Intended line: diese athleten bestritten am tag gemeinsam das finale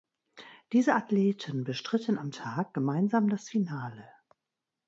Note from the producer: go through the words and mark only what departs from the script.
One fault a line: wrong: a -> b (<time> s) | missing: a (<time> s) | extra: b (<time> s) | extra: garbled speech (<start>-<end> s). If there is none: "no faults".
no faults